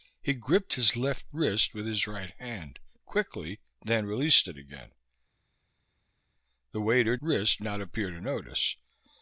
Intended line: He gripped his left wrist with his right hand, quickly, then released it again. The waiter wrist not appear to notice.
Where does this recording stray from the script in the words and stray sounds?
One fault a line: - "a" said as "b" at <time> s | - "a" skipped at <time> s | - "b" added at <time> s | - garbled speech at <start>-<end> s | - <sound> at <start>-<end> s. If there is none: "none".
none